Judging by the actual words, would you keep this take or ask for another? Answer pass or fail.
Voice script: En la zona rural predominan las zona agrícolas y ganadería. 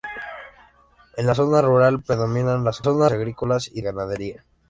pass